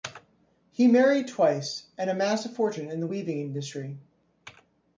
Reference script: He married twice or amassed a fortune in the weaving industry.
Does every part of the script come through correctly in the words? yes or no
no